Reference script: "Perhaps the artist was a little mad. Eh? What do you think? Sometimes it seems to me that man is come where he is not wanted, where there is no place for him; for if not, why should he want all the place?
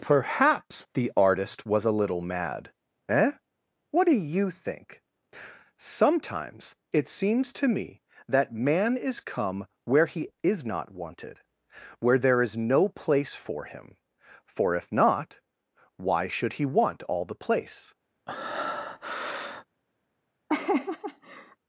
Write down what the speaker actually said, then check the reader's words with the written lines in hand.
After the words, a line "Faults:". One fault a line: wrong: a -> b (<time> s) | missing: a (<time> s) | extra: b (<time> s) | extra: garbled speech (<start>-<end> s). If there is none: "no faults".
"Perhaps the artist was a little mad. Eh? What do you think? Sometimes it seems to me that man is come where he is not wanted, where there is no place for him; for if not, why should he want all the place?
Faults:
no faults